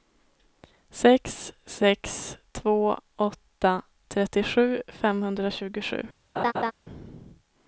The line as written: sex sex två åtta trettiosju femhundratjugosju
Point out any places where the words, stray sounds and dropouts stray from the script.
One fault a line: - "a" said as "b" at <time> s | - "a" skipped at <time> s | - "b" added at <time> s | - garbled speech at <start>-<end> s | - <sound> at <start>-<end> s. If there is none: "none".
- laugh at 6.4-6.7 s